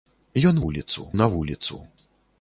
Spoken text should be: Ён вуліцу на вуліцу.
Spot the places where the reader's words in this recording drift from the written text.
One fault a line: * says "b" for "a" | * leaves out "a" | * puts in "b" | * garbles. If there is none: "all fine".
all fine